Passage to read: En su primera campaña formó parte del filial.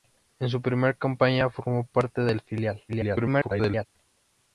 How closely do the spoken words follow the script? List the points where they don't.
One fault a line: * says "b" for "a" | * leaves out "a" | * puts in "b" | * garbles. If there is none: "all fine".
* garbles